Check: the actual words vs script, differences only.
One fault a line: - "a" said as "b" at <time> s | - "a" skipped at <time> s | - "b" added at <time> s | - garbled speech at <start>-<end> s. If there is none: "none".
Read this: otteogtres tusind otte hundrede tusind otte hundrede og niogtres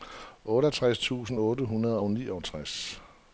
- "tusind otte hundrede" skipped at 2.0 s